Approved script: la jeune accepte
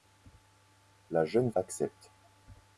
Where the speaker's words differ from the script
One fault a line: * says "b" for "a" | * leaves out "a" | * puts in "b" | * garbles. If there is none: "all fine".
all fine